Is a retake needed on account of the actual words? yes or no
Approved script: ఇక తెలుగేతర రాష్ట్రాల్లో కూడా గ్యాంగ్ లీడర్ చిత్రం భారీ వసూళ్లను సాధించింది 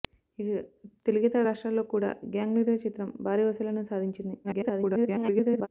yes